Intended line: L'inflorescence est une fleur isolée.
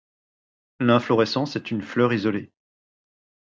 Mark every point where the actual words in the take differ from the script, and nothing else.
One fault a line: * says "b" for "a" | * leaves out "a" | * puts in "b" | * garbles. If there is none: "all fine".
all fine